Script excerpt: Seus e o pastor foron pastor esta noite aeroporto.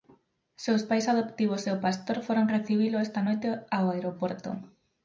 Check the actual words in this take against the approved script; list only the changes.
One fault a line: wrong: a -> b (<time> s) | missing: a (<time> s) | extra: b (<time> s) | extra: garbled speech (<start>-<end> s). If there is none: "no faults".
extra: pais adoptivos (0.9 s)
wrong: pastor -> recibilo (2.5 s)
extra: ao (3.8 s)